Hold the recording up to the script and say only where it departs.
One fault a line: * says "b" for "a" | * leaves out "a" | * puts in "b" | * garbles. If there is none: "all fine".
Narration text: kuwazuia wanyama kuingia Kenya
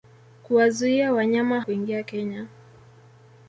all fine